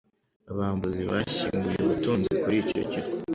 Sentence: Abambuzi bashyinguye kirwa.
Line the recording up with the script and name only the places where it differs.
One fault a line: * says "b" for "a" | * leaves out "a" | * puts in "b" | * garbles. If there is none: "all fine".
* puts in "ubutunzi kuri icyo"